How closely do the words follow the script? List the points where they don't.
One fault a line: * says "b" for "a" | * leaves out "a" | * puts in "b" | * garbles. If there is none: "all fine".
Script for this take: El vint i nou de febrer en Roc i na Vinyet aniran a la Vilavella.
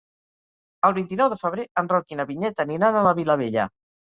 all fine